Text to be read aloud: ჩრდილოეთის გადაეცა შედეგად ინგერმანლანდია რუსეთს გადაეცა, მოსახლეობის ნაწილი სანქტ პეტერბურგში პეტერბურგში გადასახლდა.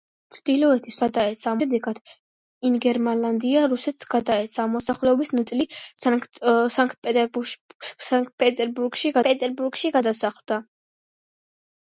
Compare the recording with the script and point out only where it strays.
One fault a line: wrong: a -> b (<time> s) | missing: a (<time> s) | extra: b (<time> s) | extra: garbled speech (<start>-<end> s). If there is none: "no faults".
no faults